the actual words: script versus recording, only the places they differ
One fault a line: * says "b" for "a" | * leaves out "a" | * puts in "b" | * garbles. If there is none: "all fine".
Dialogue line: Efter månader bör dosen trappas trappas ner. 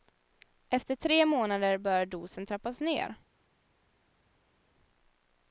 * puts in "tre"
* leaves out "trappas"